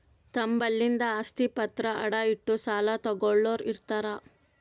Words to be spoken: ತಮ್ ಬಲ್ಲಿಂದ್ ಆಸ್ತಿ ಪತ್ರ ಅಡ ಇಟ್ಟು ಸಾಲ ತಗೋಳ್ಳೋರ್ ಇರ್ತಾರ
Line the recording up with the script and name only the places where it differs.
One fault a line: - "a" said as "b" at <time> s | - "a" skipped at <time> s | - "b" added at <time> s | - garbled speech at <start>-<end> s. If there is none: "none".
none